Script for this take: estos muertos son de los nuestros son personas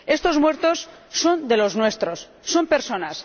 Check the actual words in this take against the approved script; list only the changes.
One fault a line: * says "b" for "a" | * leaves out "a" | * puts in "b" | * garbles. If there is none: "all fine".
all fine